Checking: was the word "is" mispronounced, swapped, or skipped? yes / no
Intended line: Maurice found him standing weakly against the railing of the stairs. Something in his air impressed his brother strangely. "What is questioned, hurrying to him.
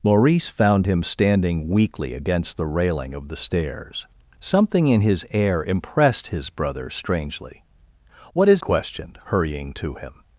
no